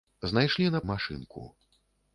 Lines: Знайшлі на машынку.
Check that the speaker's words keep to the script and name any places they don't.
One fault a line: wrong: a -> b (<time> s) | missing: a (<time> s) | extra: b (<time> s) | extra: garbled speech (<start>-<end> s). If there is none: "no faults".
no faults